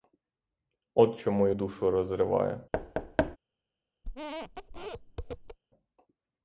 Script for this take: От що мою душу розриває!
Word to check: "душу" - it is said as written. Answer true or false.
true